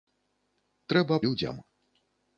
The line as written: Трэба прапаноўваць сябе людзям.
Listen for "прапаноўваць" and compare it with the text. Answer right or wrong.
wrong